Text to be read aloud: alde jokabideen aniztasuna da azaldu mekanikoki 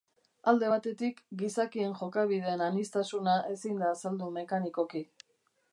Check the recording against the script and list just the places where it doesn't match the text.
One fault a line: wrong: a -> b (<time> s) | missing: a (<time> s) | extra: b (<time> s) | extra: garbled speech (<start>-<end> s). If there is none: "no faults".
extra: batetik gizakien (0.7 s)
extra: ezin (3.6 s)